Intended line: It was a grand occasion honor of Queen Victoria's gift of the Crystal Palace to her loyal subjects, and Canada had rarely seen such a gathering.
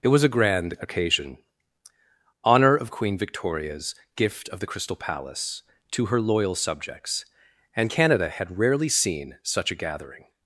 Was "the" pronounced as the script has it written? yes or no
yes